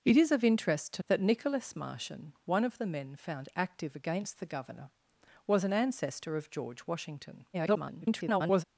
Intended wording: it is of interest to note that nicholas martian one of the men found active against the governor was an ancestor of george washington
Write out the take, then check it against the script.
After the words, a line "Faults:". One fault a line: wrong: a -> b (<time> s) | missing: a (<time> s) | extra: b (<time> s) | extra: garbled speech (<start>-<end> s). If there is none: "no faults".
it is of interest to that nicholas martian one of the men found active against the governor was an ancestor of george washington [garbled]
Faults:
missing: note (1.0 s)
extra: garbled speech (7.5-8.6 s)